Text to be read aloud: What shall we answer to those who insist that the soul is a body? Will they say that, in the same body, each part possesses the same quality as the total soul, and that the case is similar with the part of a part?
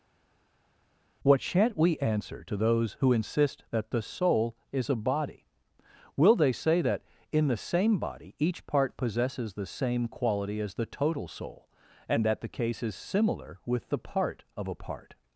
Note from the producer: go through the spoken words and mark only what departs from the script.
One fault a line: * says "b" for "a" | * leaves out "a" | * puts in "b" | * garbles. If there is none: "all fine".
* says "shan't" for "shall"